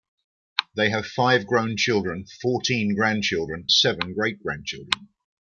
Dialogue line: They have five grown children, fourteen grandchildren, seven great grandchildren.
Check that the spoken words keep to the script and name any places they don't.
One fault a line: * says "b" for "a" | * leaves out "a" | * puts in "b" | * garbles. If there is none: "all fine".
all fine